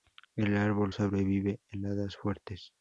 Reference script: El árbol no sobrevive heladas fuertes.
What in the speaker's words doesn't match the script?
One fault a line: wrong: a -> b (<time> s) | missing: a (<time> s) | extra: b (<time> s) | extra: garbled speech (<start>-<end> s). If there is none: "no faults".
missing: no (0.9 s)